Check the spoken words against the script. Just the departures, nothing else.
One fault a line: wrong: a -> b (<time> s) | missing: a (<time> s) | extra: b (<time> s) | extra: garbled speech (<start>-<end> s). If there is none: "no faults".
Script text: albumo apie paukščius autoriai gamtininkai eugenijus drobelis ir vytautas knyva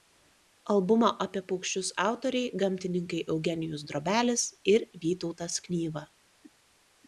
no faults